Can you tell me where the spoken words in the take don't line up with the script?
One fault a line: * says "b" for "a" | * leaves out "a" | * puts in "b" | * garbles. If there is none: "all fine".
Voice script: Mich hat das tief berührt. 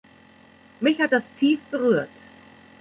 all fine